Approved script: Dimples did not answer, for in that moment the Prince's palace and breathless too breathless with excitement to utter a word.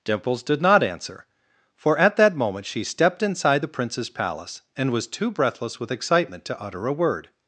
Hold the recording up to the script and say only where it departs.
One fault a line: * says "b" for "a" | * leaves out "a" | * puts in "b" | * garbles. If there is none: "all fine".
* says "at" for "in"
* puts in "she stepped inside"
* says "was" for "breathless"